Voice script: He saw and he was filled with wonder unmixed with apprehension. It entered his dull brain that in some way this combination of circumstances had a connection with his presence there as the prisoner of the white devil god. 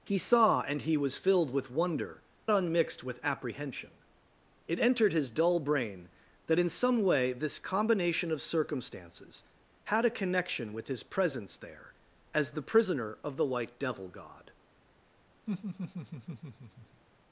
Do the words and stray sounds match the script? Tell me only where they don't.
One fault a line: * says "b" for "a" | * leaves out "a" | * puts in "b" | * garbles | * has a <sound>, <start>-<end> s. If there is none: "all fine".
* has a laugh, 15.5-17.0 s